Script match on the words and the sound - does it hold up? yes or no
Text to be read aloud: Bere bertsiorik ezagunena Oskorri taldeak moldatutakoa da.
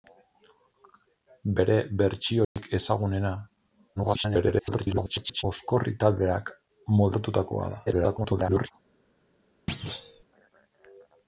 no